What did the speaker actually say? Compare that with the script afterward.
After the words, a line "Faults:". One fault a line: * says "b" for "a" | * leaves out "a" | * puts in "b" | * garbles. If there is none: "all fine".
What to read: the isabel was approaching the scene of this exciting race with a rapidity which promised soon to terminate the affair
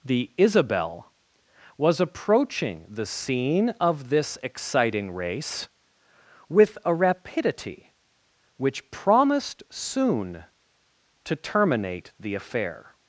the isabel was approaching the scene of this exciting race with a rapidity which promised soon to terminate the affair
Faults:
all fine